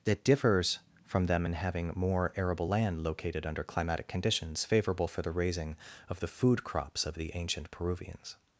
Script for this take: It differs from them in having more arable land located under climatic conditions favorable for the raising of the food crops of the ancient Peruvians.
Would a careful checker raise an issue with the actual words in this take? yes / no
yes